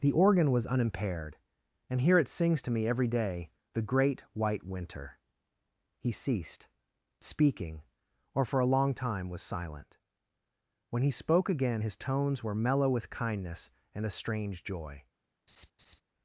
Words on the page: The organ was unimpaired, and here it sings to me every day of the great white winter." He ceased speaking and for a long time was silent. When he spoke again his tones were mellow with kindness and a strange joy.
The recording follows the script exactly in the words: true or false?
false